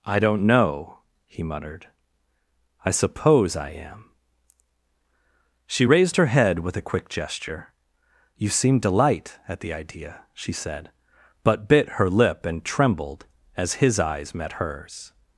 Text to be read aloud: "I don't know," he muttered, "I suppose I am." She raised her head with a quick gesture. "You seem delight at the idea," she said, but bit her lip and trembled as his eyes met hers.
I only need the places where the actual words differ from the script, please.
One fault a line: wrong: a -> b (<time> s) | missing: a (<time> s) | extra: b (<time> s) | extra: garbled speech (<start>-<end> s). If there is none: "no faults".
no faults